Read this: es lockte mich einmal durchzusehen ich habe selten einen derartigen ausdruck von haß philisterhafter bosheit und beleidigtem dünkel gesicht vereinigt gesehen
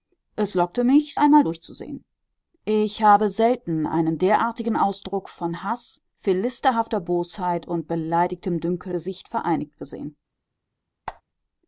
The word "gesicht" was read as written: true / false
true